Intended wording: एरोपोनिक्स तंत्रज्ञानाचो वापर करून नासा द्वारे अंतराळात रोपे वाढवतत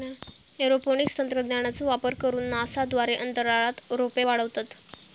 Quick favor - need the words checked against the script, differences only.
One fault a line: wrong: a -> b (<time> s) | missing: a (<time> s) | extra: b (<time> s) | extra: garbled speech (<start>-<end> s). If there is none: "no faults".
no faults